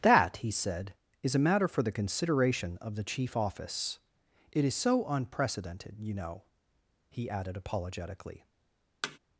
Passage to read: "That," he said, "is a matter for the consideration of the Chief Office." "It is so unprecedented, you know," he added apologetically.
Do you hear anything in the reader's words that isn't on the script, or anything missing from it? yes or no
no